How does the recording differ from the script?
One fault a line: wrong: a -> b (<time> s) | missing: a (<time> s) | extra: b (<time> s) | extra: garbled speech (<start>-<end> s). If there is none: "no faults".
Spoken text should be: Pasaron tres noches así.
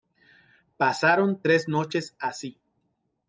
no faults